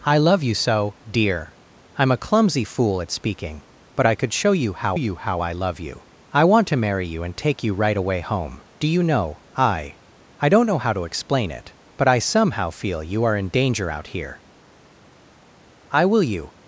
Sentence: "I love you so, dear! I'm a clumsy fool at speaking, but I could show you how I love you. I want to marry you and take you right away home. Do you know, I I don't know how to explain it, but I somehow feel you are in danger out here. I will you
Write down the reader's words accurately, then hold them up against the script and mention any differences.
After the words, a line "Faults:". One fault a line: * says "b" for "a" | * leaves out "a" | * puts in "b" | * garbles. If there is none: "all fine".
"I love you so, dear! I'm a clumsy fool at speaking, but I could show you how you how I love you. I want to marry you and take you right away home. Do you know, I I don't know how to explain it, but I somehow feel you are in danger out here. I will you
Faults:
* puts in "you how"